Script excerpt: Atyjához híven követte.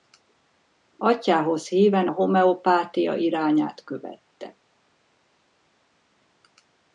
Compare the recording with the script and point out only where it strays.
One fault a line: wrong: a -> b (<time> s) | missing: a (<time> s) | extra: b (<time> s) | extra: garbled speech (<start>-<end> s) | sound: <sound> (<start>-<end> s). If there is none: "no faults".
extra: a homeopátia irányát (2.0 s)